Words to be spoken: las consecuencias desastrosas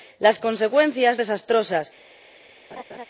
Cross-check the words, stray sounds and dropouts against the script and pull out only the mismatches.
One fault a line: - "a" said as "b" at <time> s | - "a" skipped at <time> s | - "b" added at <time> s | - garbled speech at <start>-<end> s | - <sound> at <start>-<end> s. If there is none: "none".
- laugh at 2.7-3.1 s